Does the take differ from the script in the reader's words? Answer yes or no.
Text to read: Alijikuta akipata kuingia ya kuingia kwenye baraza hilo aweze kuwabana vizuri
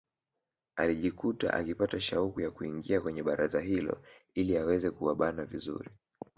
yes